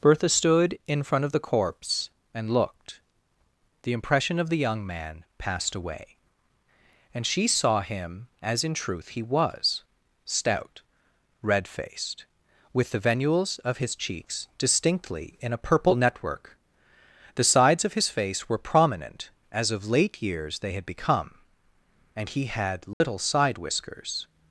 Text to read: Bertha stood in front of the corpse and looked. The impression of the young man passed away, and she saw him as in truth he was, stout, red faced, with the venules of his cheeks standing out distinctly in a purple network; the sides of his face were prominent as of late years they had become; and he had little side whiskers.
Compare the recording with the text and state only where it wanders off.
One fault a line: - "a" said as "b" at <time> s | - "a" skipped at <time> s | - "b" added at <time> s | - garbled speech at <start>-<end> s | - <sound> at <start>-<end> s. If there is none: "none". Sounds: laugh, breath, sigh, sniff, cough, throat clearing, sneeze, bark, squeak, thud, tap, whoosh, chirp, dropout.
- "standing out" skipped at 14.5 s
- dropout at 22.9-23.0 s